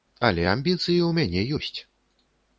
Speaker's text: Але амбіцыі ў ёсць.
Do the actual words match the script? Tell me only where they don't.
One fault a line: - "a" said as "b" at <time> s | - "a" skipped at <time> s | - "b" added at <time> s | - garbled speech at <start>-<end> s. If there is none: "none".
- "мяне" added at 1.2 s